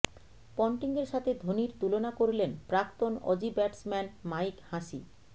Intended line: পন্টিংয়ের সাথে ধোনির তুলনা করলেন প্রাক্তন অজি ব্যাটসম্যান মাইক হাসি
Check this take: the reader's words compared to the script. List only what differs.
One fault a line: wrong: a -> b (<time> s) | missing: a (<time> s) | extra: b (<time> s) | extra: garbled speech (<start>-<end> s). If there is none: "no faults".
no faults